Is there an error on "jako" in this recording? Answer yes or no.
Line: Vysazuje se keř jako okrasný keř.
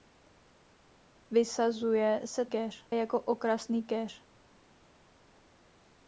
no